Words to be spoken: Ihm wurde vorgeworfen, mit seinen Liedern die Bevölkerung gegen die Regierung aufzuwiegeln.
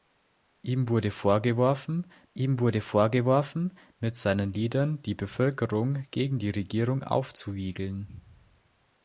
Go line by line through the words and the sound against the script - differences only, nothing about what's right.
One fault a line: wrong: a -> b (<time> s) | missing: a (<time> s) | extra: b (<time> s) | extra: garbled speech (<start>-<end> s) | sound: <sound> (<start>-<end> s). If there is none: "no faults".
extra: ihm wurde vorgeworfen (2.3 s)